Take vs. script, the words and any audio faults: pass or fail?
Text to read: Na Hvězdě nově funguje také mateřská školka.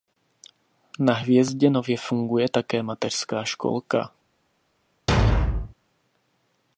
fail